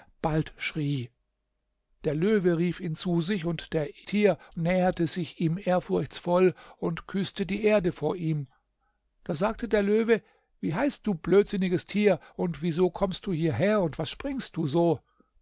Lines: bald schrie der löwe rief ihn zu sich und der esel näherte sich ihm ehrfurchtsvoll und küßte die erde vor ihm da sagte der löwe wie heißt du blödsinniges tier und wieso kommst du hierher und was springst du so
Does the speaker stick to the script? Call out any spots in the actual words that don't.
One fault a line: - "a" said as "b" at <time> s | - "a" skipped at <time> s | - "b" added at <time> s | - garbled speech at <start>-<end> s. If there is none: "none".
- "esel" said as "tier" at 4.0 s